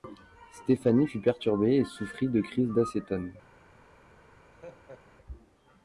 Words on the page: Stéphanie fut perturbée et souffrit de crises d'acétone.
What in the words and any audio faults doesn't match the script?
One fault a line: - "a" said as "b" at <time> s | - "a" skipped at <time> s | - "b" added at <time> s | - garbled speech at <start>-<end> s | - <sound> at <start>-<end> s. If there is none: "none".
- laugh at 4.5-5.0 s